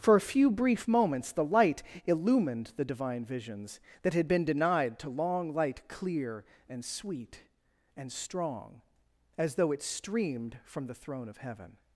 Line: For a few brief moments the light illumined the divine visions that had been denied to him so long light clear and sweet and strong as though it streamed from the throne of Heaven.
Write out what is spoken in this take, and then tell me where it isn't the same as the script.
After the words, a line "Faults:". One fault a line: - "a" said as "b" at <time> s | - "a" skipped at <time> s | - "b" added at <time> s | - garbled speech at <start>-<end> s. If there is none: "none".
For a few brief moments the light illumined the divine visions that had been denied to long light clear and sweet and strong as though it streamed from the throne of Heaven.
Faults:
- "him so" skipped at 5.1 s